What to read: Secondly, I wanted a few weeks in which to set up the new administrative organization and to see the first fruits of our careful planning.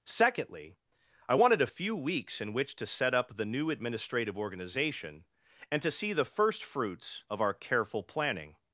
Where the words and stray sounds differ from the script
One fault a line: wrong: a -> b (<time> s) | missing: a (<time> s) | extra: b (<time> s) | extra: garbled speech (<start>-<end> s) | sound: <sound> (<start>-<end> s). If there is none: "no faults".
no faults